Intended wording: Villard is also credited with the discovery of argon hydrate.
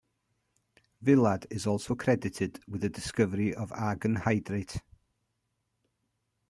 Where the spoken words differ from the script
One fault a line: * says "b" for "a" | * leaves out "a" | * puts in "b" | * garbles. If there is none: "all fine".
all fine